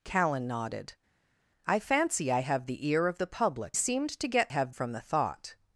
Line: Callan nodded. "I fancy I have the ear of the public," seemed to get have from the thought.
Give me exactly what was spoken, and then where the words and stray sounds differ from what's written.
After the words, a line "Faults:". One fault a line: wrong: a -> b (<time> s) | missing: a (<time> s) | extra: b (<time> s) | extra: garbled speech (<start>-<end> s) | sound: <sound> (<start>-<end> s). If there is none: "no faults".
Callan nodded. "I fancy I have the ear of the public," seemed to get have from the thought.
Faults:
no faults